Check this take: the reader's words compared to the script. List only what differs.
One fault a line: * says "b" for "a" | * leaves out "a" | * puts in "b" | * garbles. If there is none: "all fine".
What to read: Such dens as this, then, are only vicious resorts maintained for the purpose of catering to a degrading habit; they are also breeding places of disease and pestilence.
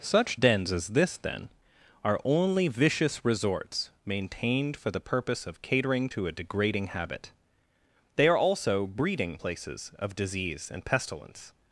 all fine